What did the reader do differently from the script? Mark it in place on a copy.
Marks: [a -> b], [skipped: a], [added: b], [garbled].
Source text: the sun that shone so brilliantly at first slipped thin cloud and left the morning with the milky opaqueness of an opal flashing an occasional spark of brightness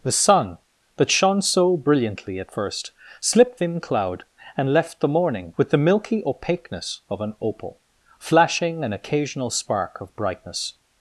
the sun that shone so brilliantly at first slipped thin cloud and left the morning with the milky opaqueness of an opal flashing an occasional spark of brightness